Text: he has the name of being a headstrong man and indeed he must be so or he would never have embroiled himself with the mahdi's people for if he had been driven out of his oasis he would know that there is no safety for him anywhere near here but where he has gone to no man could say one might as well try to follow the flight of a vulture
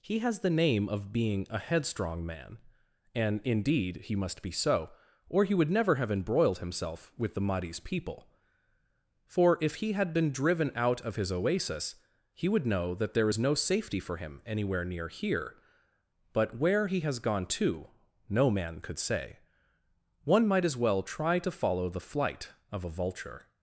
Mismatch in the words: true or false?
false